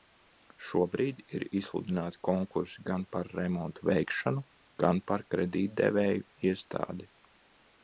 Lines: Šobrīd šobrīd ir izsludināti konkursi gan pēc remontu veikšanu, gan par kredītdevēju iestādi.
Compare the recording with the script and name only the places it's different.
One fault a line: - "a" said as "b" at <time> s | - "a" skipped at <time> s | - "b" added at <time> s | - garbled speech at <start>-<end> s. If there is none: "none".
- "šobrīd" skipped at 1.2 s
- "pēc" said as "par" at 3.2 s